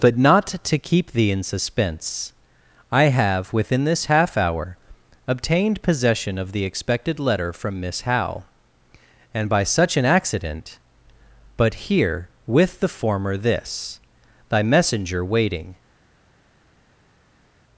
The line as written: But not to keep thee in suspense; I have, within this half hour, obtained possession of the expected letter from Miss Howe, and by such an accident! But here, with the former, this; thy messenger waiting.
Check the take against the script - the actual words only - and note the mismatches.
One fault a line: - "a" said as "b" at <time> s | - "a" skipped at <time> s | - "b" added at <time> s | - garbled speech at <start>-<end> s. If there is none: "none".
none